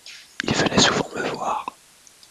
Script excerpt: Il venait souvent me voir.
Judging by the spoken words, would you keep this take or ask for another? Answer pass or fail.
pass